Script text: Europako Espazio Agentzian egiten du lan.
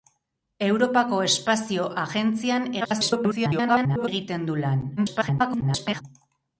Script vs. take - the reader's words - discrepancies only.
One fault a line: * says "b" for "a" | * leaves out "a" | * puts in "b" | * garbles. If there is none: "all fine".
* garbles
* garbles